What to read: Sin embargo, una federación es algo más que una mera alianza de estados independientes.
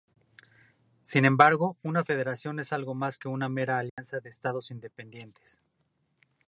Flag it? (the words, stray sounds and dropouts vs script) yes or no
yes